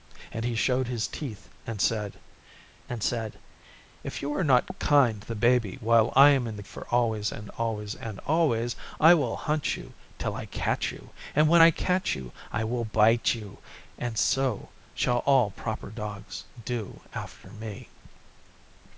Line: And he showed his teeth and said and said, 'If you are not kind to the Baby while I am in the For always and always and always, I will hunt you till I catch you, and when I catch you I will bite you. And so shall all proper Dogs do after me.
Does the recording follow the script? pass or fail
pass